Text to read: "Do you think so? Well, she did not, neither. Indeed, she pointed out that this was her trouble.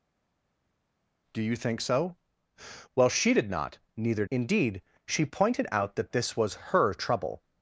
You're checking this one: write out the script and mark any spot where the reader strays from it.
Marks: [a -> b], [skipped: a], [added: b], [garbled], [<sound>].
"Do you think so? Well, she did not, neither. Indeed, she pointed out that this was her trouble.